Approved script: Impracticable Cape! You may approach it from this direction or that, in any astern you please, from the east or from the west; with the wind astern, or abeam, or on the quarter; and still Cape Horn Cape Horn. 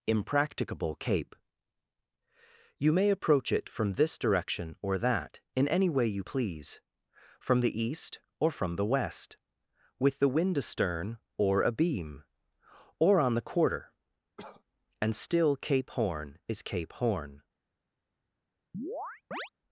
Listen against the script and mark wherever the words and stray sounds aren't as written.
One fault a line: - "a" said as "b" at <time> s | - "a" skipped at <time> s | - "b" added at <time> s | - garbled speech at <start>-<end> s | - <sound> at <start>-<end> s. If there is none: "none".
- "astern" said as "way" at 5.9 s
- cough at 14.4-14.6 s
- "is" added at 16.5 s
- chirp at 18.7-19.5 s